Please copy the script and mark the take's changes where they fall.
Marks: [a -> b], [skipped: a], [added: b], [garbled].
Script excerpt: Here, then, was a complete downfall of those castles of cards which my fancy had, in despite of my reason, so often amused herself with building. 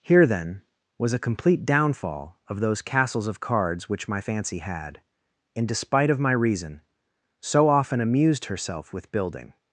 Here, then, was a complete downfall of those castles of cards which my fancy had, in despite of my reason, so often amused herself with building.